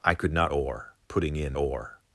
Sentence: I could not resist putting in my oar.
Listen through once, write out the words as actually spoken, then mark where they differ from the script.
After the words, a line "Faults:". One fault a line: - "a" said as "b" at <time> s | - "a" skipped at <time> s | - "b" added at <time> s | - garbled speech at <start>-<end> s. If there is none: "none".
I could not oar putting in oar.
Faults:
- "resist" said as "oar" at 0.5 s
- "my" skipped at 1.6 s